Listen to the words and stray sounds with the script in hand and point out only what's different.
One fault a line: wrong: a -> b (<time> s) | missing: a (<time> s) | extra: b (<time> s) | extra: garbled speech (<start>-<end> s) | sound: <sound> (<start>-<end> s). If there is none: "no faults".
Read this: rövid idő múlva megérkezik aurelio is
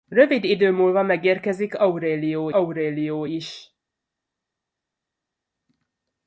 extra: aurelio (2.5 s)